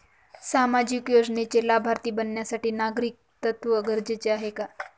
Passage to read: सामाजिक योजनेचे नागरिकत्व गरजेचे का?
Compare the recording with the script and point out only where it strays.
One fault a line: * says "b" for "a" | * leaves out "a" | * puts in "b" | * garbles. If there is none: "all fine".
* puts in "लाभार्थी बनण्यासाठी"
* puts in "आहे"